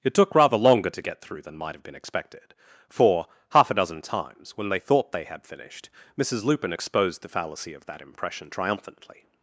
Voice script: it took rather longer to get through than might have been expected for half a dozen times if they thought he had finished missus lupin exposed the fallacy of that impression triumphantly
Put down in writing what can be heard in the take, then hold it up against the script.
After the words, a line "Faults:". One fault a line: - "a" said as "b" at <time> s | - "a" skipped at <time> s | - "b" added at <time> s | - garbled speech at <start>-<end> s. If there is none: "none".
it took rather longer to get through than might have been expected for half a dozen times when they thought they had finished missus lupin exposed the fallacy of that impression triumphantly
Faults:
- "if" said as "when" at 4.6 s
- "he" said as "they" at 5.1 s